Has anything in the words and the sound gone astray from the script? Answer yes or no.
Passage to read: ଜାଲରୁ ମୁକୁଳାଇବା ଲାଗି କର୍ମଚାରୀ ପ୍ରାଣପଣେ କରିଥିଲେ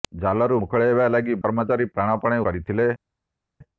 no